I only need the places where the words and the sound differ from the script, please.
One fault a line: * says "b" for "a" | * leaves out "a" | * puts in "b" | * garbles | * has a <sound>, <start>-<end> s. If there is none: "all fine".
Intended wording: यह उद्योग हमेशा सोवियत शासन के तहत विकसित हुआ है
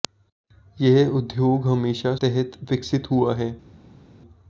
* leaves out "सोवियत शासन के"